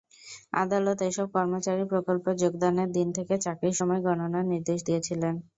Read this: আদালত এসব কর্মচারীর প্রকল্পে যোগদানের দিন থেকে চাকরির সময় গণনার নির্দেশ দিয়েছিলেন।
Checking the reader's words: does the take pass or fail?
pass